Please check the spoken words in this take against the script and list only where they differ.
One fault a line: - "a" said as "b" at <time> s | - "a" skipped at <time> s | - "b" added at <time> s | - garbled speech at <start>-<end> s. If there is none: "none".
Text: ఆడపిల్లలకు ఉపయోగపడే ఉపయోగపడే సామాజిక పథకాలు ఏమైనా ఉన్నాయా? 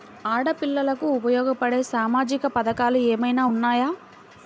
- "ఉపయోగపడే" skipped at 1.8 s